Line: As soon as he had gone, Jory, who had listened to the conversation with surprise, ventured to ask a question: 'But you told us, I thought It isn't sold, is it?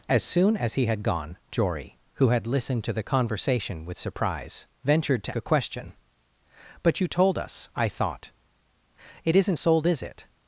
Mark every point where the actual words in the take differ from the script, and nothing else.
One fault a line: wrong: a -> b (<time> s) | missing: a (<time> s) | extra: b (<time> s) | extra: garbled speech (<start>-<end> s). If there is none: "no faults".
missing: ask (5.3 s)